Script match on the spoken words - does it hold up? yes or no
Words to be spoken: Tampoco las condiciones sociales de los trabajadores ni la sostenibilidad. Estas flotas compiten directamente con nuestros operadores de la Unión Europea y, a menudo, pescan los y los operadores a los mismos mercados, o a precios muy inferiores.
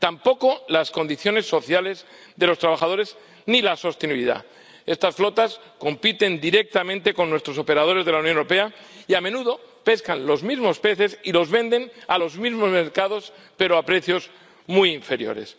no